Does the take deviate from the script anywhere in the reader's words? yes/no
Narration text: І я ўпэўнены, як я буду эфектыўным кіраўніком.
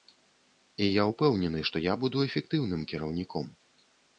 yes